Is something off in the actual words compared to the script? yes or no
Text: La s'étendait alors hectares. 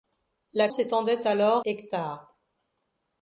no